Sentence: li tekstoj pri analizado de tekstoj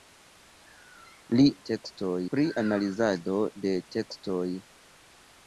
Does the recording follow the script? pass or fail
pass